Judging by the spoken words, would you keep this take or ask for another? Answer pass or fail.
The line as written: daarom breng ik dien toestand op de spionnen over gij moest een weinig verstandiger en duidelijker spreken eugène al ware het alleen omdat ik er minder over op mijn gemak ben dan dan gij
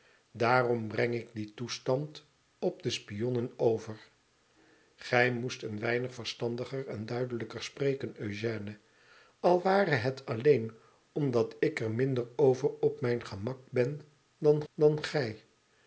pass